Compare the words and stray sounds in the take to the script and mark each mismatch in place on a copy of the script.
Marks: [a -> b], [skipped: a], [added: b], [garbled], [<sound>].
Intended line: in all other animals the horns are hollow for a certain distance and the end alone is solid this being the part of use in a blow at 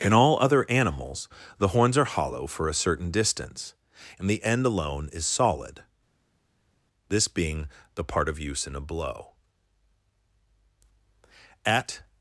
in all other animals the horns are hollow for a certain distance and the end alone is solid this being the part of use in a blow at